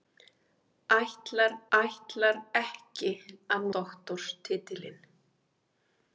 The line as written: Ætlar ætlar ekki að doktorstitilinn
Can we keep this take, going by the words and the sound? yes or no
yes